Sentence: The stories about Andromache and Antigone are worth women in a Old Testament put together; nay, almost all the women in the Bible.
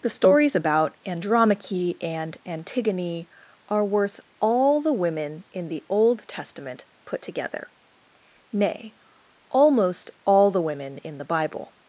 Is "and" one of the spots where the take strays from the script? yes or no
no